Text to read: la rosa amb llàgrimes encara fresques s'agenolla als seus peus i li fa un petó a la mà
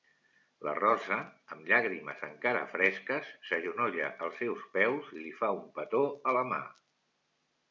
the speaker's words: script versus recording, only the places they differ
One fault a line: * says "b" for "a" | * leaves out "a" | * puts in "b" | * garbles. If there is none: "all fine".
all fine